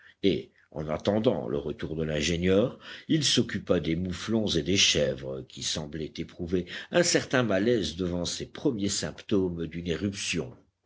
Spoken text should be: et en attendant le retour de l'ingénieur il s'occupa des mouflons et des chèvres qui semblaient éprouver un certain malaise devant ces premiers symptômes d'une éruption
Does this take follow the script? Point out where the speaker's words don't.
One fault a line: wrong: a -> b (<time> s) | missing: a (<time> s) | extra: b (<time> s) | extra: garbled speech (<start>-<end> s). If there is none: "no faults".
no faults